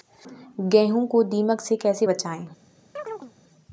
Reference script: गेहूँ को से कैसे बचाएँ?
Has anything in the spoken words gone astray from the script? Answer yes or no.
yes